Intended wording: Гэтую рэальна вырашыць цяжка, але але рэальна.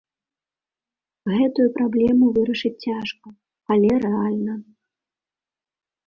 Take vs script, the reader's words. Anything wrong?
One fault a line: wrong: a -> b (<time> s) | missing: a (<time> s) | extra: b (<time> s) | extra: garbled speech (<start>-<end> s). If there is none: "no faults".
wrong: рэальна -> праблему (1.8 s)
missing: але (3.9 s)